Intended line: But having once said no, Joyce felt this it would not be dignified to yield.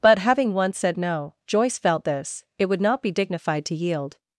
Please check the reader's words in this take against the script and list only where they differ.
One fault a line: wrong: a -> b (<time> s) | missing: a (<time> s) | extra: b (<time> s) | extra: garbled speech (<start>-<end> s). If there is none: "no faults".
no faults